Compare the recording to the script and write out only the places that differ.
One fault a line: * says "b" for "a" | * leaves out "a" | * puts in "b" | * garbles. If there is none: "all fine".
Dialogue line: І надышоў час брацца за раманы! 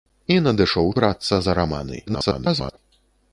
* leaves out "час"
* garbles